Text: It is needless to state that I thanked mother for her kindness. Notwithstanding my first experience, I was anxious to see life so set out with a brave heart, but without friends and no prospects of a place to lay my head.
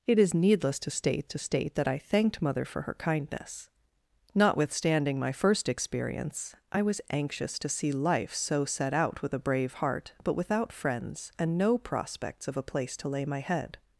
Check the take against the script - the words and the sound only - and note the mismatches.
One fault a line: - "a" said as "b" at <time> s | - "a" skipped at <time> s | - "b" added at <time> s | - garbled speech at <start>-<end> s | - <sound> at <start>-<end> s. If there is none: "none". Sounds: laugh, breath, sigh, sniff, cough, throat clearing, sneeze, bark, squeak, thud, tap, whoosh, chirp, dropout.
- "to state" added at 1.3 s